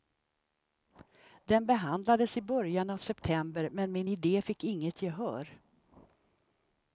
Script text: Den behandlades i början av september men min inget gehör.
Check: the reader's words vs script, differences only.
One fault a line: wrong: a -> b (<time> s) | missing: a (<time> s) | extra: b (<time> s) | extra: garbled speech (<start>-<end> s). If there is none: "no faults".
extra: idé fick (4.1 s)